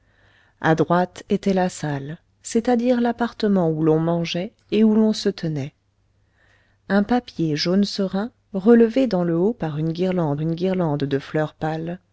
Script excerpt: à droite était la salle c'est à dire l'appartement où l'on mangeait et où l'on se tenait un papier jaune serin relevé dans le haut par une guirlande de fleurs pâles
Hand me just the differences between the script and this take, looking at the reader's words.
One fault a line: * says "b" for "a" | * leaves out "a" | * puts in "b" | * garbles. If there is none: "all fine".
* puts in "une guirlande"